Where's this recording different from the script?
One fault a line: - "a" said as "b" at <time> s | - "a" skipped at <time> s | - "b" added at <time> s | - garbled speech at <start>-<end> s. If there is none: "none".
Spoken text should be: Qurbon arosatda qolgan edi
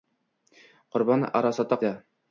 - "qolgan" skipped at 1.8 s